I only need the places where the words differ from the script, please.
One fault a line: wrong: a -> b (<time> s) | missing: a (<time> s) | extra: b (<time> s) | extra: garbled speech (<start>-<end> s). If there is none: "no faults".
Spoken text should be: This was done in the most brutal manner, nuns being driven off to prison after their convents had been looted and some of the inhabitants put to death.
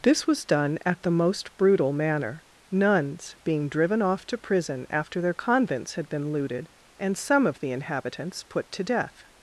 wrong: in -> at (0.8 s)